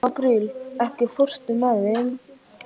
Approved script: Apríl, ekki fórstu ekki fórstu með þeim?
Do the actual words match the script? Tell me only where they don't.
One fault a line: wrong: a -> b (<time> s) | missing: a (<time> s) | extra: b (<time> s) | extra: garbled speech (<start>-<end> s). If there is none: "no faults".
missing: ekki fórstu (1.6 s)